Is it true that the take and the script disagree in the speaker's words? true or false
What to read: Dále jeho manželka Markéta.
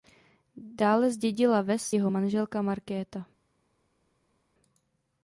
true